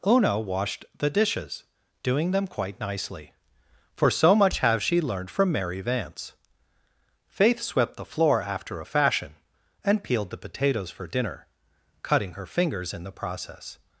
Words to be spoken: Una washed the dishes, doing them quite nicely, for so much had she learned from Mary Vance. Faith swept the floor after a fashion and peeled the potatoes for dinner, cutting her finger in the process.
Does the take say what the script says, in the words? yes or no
no